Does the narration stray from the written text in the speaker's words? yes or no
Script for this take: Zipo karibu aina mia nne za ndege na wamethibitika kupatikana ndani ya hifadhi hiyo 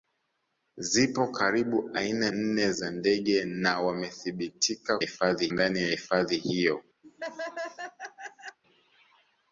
yes